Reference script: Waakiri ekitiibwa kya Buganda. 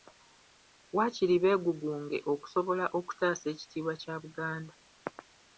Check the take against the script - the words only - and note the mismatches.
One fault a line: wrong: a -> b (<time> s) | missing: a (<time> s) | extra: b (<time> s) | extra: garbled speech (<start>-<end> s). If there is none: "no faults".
extra: beegugunge okusobola okutaasa (1.4 s)